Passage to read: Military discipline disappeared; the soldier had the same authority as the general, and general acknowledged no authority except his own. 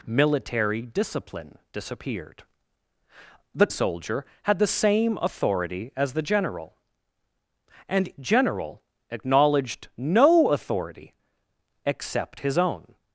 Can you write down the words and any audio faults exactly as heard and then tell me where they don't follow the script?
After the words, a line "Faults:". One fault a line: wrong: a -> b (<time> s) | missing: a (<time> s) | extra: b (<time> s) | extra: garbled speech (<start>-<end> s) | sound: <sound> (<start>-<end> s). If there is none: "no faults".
Military discipline disappeared; the soldier had the same authority as the general, and general acknowledged no authority except his own.
Faults:
no faults